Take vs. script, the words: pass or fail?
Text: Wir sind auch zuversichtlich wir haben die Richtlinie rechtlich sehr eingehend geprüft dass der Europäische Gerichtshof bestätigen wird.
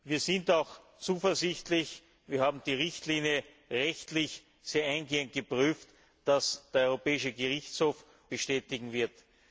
pass